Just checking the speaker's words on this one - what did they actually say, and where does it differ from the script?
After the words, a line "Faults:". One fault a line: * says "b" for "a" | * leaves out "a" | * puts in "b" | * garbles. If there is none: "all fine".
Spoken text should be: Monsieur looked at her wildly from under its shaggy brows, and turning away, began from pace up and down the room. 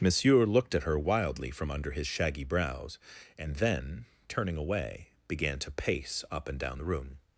Monsieur looked at her wildly from under his shaggy brows, and then, turning away, began to pace up and down the room.
Faults:
* says "his" for "its"
* puts in "then"
* says "to" for "from"